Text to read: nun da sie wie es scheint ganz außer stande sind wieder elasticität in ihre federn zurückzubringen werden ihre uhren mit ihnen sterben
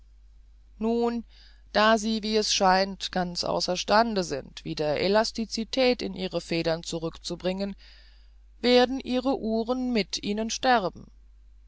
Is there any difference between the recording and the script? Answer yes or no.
no